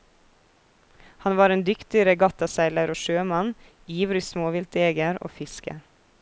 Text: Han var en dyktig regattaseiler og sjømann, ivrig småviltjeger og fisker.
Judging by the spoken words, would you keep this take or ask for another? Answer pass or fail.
pass